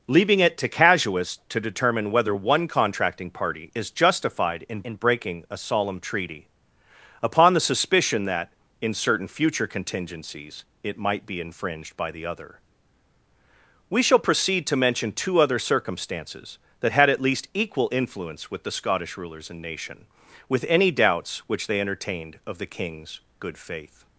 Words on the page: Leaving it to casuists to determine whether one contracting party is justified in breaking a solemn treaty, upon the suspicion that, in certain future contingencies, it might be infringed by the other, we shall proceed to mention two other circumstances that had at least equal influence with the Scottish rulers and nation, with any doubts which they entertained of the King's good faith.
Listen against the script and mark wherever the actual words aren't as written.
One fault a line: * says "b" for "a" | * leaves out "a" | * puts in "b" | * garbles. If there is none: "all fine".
* puts in "in"